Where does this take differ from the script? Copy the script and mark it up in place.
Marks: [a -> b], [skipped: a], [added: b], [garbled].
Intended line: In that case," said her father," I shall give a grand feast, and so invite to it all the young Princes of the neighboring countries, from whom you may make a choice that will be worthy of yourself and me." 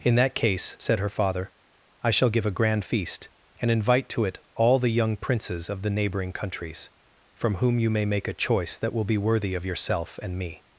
In that case," said her father," I shall give a grand feast, and [skipped: so] invite to it all the young Princes of the neighboring countries, from whom you may make a choice that will be worthy of yourself and me."